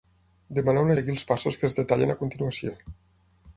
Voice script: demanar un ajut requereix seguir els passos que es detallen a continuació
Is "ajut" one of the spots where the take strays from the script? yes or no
yes